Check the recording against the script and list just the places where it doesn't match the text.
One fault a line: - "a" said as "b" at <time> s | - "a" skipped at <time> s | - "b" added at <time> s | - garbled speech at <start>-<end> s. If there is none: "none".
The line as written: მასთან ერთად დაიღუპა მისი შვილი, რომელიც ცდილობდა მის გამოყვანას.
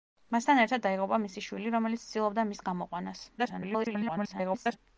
- garbled speech at 3.4-4.8 s